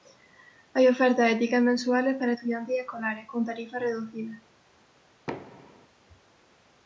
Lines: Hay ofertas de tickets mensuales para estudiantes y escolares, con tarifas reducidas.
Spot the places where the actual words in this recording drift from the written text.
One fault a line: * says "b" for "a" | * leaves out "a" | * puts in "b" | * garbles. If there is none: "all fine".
all fine